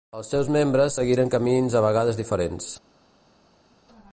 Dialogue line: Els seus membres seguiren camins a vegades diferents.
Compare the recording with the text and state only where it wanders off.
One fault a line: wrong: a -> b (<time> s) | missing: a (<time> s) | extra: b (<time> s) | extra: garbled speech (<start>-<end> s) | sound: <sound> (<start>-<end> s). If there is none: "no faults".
no faults